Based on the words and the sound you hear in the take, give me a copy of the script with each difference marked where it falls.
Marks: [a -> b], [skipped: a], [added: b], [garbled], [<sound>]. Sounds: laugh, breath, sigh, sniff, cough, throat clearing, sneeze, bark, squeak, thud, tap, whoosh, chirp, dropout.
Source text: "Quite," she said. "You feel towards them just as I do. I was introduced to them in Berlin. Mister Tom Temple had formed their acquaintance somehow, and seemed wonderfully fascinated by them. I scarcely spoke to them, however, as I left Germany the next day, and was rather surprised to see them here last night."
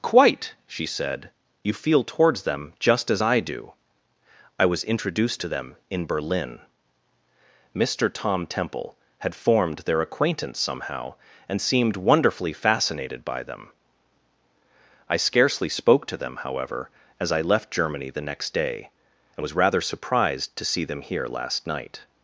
"Quite," she said. "You feel towards them just as I do. I was introduced to them in Berlin. Mister Tom Temple had formed their acquaintance somehow, and seemed wonderfully fascinated by them. I scarcely spoke to them, however, as I left Germany the next day, and was rather surprised to see them here last night."